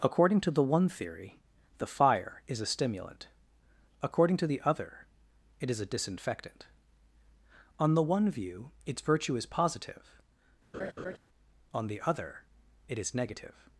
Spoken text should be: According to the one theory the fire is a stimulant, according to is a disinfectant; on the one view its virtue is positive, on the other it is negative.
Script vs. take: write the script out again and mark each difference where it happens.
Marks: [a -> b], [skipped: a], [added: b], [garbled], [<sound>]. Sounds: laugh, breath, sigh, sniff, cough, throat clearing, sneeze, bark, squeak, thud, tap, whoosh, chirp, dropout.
According to the one theory the fire is a stimulant, according to [added: the other it] is a disinfectant; on the one view its virtue is positive, [laugh] on the other it is negative.